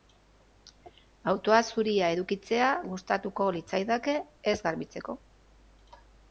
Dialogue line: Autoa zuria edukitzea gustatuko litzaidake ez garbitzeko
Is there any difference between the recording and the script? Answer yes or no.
no